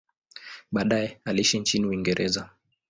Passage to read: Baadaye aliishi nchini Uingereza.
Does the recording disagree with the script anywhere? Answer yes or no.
no